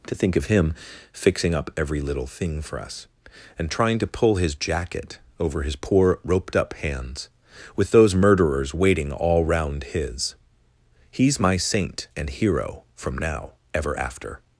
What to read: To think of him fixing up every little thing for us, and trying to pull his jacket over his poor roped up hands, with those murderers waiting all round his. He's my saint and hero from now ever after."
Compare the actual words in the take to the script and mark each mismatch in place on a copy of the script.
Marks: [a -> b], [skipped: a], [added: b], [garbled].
To think of him fixing up every little thing for us, and trying to pull his jacket over his poor roped up hands, with those murderers waiting all round his. He's my saint and hero from now ever after."